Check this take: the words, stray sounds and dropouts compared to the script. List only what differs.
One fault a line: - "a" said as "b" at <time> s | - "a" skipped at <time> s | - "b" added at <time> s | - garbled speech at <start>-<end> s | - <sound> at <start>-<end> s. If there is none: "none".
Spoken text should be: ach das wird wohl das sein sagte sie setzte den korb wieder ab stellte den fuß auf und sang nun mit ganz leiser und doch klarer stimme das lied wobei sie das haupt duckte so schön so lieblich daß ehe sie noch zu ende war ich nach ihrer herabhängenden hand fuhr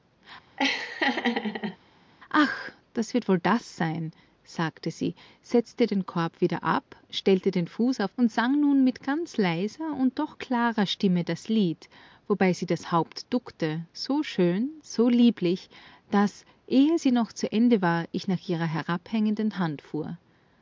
- laugh at 0.6-1.8 s